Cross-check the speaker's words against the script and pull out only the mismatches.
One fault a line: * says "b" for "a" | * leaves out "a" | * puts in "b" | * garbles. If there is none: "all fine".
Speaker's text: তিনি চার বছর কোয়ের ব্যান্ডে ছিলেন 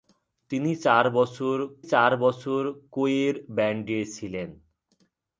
* puts in "চার বছর"